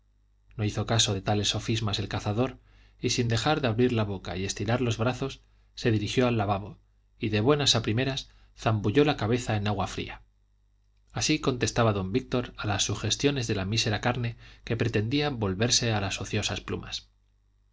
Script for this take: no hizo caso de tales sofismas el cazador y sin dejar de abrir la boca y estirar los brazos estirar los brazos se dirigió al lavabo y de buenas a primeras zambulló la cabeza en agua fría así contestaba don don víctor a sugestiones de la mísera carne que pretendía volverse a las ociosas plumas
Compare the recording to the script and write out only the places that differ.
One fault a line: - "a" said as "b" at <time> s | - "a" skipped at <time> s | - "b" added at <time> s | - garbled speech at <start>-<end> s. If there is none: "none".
- "estirar los brazos" skipped at 5.4 s
- "don" skipped at 12.1 s
- "las" added at 12.7 s